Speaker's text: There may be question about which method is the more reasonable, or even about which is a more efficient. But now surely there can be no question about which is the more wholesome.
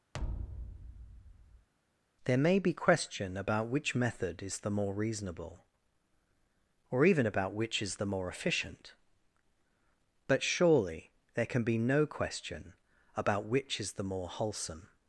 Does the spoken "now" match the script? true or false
false